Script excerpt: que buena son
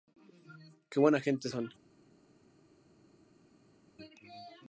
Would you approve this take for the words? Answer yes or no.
no